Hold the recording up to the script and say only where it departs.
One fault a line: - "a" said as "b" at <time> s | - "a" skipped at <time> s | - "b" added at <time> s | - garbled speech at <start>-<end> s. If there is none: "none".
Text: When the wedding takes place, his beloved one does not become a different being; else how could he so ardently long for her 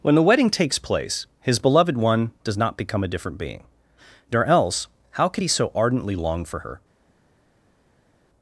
- "nor" added at 4.3 s